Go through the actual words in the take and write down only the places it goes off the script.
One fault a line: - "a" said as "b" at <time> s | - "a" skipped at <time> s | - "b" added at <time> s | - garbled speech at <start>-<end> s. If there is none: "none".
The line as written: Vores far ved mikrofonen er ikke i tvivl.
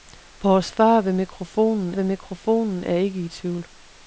- "ved mikrofonen" added at 1.9 s